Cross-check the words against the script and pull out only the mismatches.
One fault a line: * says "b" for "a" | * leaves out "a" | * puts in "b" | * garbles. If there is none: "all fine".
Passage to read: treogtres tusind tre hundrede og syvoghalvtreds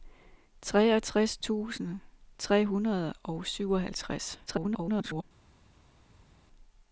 * garbles